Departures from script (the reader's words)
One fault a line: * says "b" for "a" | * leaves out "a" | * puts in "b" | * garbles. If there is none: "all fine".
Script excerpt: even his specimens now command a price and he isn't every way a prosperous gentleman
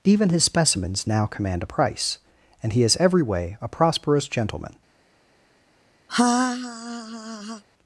* says "is" for "isn't"